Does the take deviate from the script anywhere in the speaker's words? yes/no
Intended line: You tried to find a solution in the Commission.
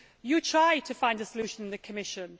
no